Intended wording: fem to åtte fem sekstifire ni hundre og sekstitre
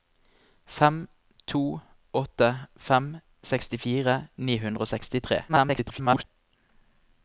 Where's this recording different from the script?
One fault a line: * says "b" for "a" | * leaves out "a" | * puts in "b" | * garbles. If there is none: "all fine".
* garbles